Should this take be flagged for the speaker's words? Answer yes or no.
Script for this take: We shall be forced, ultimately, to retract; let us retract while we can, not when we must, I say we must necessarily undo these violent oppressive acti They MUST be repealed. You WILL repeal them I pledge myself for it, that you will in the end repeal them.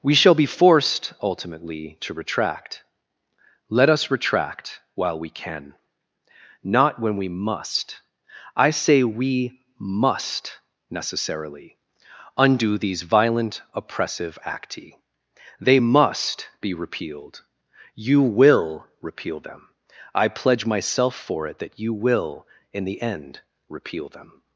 no